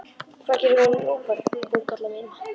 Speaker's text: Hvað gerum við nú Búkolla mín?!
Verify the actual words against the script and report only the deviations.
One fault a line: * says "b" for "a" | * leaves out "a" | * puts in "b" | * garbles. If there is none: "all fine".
all fine